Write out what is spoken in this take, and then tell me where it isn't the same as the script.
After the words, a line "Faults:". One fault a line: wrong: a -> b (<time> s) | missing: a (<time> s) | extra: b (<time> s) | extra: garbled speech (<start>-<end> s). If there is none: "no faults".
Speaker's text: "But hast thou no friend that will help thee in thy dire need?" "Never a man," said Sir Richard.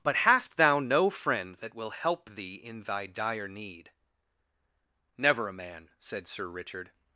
"But hast thou no friend that will help thee in thy dire need?" "Never a man," said Sir Richard.
Faults:
no faults